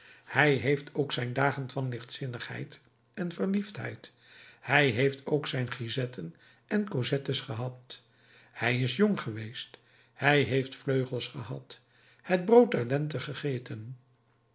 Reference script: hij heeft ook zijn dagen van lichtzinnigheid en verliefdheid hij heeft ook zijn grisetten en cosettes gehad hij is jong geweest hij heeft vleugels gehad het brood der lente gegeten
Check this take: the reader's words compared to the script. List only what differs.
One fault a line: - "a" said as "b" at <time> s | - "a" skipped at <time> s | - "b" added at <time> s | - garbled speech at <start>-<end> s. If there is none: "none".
none